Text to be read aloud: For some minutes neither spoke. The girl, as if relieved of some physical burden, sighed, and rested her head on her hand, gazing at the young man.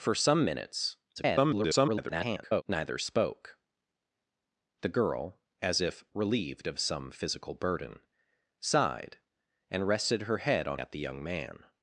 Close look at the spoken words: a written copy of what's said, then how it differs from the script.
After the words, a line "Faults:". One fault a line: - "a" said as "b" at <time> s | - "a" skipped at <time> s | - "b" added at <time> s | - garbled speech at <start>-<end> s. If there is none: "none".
For some minutes [garbled] neither spoke. The girl, as if relieved of some physical burden, sighed, and rested her head on at the young man.
Faults:
- garbled speech at 1.2-2.6 s
- "her hand gazing" skipped at 10.8 s